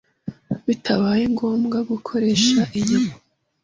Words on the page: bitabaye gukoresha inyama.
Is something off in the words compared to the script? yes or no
yes